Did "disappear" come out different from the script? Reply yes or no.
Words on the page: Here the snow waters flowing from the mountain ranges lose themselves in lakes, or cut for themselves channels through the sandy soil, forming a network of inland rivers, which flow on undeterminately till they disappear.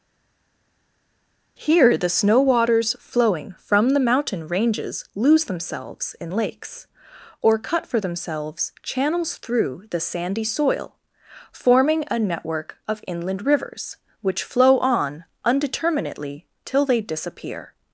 no